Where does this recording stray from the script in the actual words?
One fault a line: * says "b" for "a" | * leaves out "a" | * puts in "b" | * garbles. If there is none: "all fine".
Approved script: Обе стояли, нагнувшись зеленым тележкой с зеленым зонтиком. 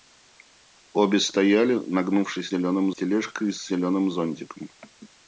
all fine